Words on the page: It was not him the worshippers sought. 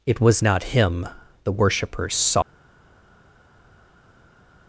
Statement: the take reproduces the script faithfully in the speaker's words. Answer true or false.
false